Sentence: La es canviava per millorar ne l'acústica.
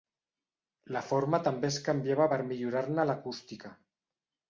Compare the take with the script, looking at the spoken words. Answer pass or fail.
fail